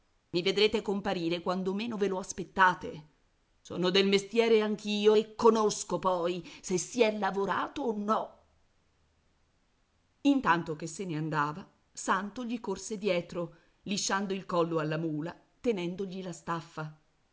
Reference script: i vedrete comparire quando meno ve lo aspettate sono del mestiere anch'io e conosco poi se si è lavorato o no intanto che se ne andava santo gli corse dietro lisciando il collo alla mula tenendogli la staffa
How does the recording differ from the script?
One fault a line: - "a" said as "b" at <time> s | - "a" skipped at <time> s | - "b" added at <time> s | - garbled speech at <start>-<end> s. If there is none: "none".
none